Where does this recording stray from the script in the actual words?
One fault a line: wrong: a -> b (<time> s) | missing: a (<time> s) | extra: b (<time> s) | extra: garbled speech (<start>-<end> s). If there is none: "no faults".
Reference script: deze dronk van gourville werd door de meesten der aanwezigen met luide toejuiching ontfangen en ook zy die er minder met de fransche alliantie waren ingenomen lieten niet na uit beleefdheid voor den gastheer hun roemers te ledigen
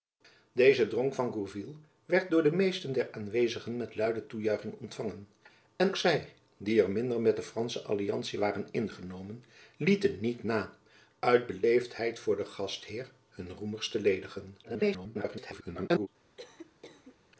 missing: ook (6.0 s)
extra: garbled speech (14.6-16.1 s)